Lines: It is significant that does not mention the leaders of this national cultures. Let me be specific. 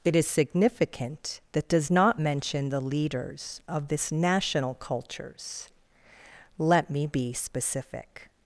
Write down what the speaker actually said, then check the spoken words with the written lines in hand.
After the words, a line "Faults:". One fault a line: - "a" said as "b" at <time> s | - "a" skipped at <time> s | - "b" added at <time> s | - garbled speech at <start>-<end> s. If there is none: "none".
It is significant that does not mention the leaders of this national cultures. Let me be specific.
Faults:
none